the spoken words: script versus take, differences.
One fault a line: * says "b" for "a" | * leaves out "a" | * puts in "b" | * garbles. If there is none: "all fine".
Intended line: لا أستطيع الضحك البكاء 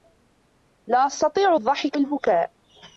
all fine